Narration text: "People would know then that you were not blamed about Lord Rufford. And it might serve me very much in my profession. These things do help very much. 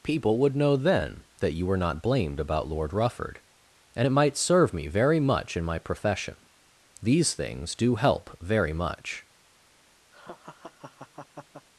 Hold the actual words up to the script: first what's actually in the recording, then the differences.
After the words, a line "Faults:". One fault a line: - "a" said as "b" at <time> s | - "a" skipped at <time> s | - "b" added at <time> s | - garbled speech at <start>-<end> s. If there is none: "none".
"People would know then that you were not blamed about Lord Rufford. And it might serve me very much in my profession. These things do help very much.
Faults:
none